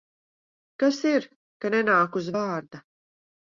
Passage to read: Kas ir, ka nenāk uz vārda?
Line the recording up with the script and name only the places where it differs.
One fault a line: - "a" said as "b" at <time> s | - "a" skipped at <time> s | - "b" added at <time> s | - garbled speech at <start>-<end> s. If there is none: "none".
none